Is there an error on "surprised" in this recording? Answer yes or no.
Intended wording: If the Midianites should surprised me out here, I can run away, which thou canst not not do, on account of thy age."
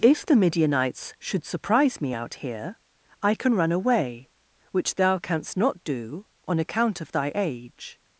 yes